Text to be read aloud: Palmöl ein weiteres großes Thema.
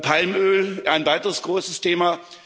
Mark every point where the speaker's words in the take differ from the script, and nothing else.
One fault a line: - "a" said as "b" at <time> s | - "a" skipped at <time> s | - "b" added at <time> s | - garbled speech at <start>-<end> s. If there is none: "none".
none